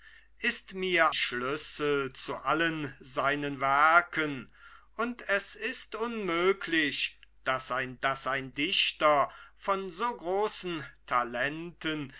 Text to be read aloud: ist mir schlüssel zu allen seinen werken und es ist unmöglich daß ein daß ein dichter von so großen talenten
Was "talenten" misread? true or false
false